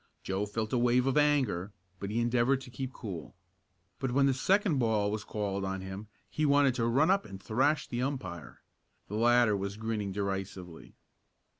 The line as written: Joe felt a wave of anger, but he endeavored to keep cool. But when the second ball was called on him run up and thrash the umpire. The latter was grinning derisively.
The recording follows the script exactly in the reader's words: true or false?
false